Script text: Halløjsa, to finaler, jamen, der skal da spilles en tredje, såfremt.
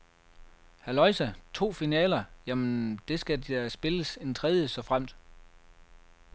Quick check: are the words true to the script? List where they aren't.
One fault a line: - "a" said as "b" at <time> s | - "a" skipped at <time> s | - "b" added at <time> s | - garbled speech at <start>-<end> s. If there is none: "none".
none